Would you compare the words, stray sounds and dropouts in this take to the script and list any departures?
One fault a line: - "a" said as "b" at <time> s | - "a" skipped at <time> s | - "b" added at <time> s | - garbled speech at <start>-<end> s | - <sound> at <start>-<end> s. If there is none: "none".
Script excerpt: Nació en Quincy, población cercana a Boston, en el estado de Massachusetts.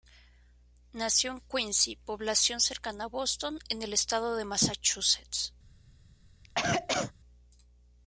- cough at 6.4-7.1 s